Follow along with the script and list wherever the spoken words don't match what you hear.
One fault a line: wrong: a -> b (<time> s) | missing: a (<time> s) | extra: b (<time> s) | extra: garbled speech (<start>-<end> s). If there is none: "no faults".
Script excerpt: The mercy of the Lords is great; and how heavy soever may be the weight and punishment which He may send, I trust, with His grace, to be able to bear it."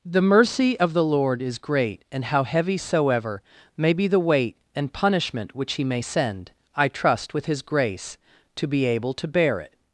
wrong: Lords -> Lord (1.0 s)